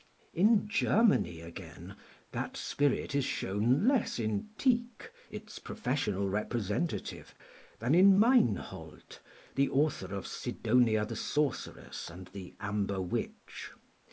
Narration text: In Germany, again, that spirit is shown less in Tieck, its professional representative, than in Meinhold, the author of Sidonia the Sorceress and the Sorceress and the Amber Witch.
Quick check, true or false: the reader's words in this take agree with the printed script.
false